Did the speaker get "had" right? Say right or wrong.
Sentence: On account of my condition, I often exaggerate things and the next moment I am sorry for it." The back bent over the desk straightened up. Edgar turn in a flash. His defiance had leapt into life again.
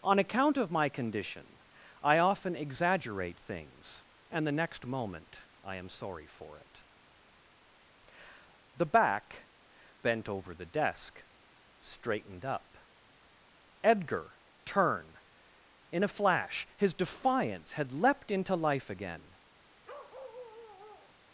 right